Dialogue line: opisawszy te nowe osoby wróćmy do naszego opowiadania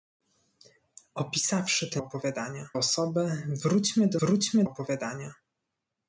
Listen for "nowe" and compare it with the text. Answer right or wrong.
wrong